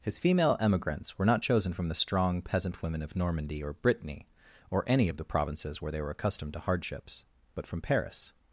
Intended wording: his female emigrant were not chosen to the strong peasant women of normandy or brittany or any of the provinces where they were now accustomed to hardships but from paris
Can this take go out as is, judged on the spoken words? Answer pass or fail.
fail